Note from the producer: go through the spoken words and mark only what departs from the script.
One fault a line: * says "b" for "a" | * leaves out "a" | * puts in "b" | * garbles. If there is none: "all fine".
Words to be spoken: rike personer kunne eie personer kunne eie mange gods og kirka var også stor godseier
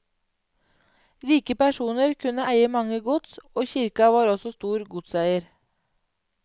* leaves out "personer kunne eie"